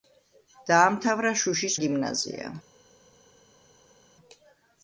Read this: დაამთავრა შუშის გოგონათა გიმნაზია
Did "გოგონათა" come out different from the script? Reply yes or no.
yes